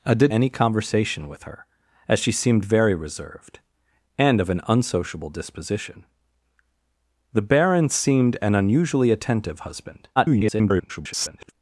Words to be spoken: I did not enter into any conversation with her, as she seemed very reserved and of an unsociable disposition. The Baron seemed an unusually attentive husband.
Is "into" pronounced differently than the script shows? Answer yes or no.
yes